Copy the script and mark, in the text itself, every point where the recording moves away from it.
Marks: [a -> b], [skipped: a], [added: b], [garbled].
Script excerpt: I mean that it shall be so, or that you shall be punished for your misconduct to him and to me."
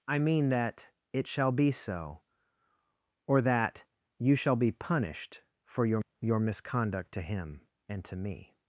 I mean that it shall be so, or that you shall be punished for your [added: your] misconduct to him and to me."